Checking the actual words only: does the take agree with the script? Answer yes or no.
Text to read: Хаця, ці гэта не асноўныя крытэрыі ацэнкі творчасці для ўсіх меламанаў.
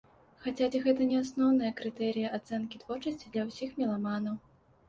yes